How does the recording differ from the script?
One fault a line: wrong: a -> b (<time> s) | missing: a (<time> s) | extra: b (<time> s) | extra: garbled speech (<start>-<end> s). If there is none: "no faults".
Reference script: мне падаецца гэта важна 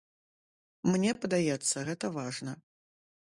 no faults